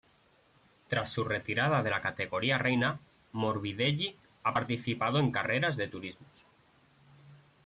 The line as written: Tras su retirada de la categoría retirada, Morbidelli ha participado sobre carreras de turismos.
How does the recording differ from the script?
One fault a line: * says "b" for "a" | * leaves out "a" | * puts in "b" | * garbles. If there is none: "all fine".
* says "reina" for "retirada"
* says "en" for "sobre"